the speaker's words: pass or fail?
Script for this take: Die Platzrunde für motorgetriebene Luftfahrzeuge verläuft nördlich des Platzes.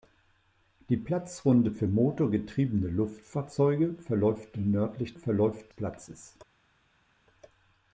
fail